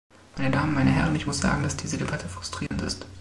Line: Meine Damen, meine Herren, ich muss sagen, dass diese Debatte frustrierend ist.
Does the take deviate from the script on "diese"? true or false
false